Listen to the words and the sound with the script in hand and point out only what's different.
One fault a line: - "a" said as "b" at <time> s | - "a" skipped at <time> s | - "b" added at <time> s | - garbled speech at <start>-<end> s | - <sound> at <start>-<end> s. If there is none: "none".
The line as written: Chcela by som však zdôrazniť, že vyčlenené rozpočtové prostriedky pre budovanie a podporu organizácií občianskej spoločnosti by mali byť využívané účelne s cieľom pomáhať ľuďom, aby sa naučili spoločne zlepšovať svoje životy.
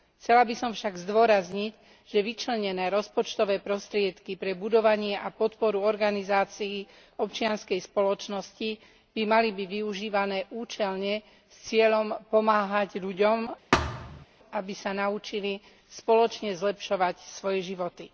- thud at 13.7-14.3 s